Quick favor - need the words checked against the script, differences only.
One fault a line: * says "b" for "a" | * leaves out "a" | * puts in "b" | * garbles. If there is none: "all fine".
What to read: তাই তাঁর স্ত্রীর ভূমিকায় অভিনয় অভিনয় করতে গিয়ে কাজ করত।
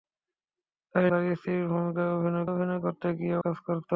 all fine